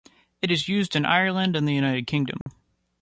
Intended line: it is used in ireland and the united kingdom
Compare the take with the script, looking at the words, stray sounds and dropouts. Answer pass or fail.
fail